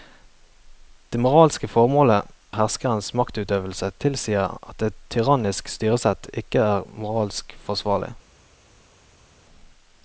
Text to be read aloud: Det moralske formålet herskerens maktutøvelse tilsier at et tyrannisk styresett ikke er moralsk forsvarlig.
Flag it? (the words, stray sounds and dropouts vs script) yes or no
no